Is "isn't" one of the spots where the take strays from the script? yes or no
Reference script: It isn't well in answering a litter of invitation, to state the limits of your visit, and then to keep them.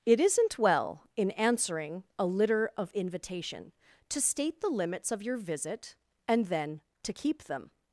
no